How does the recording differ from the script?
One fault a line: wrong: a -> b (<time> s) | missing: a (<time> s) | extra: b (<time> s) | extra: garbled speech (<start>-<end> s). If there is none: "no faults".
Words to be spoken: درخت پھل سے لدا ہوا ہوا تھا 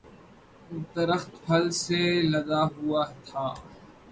missing: ہوا (3.0 s)